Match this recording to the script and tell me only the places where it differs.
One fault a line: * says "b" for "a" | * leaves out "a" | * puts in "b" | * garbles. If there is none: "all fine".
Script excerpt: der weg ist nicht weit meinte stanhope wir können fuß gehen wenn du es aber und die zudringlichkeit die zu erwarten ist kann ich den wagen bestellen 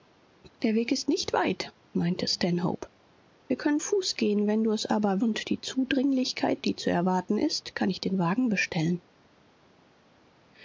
all fine